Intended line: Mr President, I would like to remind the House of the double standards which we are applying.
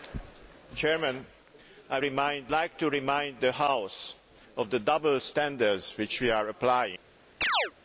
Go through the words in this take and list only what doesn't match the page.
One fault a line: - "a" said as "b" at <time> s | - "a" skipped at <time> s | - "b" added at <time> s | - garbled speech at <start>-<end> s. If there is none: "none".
- "would" said as "remind" at 2.0 s